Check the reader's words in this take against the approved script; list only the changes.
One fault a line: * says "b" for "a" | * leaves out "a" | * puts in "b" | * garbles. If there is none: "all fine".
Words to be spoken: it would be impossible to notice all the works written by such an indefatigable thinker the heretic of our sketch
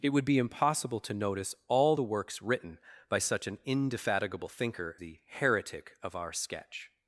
all fine